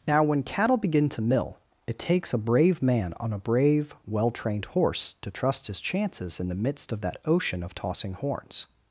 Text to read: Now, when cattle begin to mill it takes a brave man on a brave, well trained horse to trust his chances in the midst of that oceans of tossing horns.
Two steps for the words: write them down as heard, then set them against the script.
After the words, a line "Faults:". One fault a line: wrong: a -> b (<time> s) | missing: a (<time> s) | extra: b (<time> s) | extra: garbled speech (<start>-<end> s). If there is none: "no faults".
Now, when cattle begin to mill it takes a brave man on a brave, well trained horse to trust his chances in the midst of that ocean of tossing horns.
Faults:
wrong: oceans -> ocean (7.2 s)